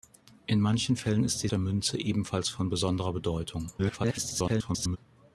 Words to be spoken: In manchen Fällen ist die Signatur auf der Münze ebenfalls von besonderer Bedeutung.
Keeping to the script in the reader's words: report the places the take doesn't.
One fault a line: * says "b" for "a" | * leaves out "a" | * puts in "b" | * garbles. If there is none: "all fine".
* leaves out "Signatur auf"
* garbles